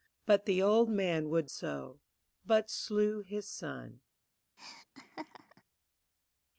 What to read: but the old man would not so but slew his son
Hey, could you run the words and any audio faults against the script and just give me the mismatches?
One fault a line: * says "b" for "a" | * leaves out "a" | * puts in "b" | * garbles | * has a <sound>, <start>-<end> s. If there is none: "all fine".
* leaves out "not"
* has a laugh, 4.6-5.6 s